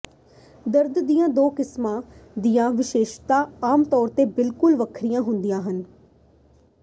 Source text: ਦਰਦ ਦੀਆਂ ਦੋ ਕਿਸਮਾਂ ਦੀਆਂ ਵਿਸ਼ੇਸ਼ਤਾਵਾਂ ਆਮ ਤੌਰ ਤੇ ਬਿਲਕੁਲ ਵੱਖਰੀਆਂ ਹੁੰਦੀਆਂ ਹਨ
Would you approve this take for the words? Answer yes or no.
yes